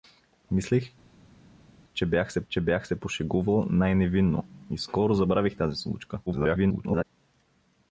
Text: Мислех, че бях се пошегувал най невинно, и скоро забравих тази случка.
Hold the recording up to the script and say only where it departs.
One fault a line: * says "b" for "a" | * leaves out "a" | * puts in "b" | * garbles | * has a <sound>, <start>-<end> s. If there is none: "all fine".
* puts in "че бях се"
* garbles